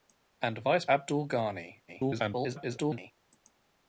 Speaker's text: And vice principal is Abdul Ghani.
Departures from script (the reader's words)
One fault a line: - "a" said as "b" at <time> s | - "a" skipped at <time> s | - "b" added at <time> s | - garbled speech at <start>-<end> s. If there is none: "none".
- "principal is" skipped at 0.8 s
- garbled speech at 1.9-3.1 s